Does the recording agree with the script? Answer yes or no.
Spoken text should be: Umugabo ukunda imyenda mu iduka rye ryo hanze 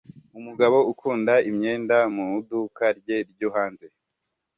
yes